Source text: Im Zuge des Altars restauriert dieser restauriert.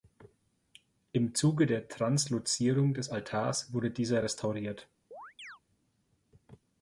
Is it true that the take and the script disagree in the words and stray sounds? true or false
true